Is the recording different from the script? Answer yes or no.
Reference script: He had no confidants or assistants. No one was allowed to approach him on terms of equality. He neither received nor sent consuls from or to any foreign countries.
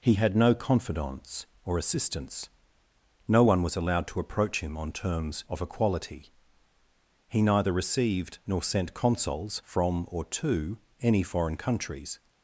no